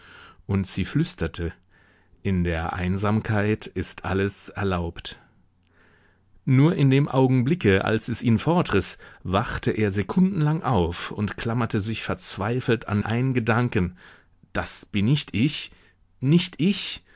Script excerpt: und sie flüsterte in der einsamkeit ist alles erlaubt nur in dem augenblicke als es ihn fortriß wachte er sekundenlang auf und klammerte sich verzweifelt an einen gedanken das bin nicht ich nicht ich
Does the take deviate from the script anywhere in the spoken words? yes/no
no